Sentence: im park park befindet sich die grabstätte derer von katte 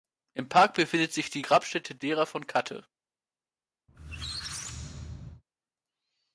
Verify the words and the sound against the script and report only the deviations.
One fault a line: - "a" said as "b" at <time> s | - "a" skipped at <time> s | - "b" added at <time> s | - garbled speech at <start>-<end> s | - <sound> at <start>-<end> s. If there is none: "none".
- "park" skipped at 0.7 s
- squeak at 3.9-5.4 s